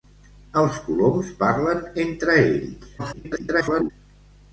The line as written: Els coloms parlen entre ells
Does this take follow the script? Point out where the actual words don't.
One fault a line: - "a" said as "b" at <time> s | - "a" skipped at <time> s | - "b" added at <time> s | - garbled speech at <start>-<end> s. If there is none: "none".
- garbled speech at 3.0-3.9 s